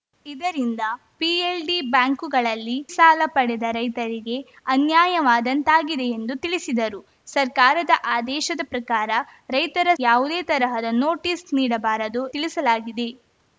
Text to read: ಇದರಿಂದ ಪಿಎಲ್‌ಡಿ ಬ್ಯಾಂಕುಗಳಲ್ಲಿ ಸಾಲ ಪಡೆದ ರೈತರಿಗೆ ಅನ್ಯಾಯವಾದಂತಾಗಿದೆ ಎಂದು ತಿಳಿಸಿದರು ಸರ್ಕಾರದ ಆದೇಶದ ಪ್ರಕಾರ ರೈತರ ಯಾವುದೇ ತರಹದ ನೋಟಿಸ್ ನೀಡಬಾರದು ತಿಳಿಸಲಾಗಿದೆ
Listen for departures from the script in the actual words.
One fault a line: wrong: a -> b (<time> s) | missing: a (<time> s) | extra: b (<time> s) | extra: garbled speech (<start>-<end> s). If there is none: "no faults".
no faults